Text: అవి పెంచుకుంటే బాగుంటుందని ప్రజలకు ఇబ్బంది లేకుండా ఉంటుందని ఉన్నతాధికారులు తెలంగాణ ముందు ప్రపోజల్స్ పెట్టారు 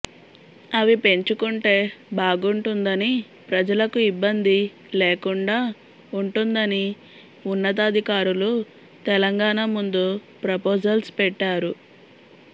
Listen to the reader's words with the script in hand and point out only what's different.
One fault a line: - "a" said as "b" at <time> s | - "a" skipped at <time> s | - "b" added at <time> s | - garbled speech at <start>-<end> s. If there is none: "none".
none